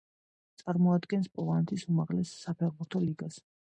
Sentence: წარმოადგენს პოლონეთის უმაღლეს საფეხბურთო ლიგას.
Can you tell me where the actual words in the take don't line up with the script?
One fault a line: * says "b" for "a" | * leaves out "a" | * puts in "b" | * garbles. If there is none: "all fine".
all fine